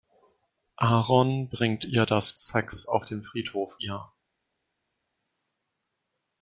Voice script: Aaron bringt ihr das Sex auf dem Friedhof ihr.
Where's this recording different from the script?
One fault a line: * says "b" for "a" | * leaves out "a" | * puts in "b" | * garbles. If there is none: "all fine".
all fine